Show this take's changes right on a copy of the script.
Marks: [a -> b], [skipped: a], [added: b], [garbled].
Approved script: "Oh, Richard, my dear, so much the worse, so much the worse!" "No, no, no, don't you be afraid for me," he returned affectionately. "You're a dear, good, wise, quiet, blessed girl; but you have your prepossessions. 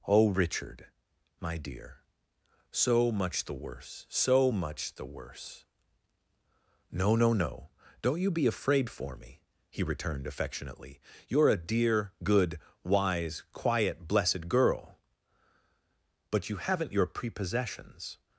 "Oh, Richard, my dear, so much the worse, so much the worse!" "No, no, no, don't you be afraid for me," he returned affectionately. "You're a dear, good, wise, quiet, blessed girl; but you [have -> haven't] your prepossessions.